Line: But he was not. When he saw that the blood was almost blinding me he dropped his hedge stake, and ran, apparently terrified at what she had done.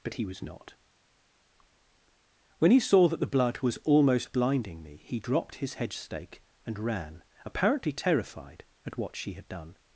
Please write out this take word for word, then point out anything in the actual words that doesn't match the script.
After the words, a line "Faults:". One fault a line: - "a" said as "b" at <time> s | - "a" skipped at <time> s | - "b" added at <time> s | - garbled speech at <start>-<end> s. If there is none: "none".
But he was not. When he saw that the blood was almost blinding me he dropped his hedge stake, and ran, apparently terrified at what she had done.
Faults:
none